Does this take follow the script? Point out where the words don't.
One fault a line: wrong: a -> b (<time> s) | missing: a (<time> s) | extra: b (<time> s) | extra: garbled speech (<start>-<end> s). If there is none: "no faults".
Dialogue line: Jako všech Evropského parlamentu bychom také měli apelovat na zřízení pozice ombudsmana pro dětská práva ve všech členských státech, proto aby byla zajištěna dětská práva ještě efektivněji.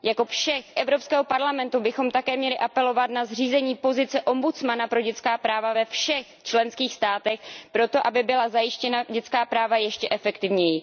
no faults